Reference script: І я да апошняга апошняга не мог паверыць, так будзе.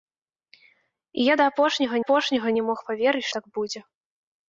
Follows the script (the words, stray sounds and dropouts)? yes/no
yes